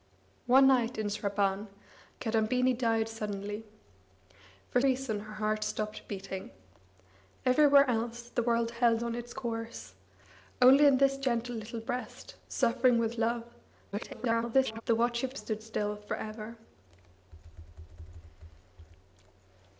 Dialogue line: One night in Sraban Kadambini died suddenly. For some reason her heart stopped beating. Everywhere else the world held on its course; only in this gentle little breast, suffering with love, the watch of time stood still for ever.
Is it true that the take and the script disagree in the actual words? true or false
true